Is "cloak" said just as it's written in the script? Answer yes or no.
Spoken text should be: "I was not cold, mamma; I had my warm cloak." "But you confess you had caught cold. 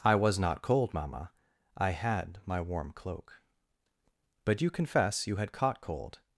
yes